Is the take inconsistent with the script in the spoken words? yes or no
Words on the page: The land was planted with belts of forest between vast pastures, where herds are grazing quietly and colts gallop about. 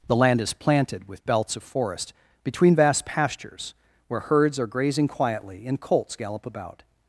yes